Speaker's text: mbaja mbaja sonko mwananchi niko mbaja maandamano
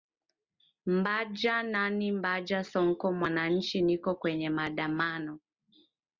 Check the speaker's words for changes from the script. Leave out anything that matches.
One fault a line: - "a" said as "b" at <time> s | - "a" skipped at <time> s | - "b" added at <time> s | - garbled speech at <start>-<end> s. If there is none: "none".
- "nani" added at 1.6 s
- "mbaja" said as "kwenye" at 4.2 s